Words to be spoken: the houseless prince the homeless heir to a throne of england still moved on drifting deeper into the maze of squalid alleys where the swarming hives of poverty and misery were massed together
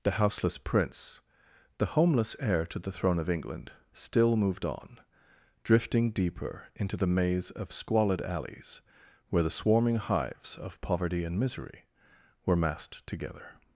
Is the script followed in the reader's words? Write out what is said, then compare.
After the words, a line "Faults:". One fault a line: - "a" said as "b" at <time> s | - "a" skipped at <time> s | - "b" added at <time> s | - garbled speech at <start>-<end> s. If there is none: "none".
the houseless prince the homeless heir to the throne of england still moved on drifting deeper into the maze of squalid alleys where the swarming hives of poverty and misery were massed together
Faults:
- "a" said as "the" at 2.8 s